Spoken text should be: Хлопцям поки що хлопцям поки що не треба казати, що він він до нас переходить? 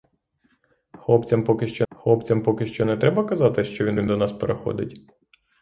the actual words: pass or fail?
pass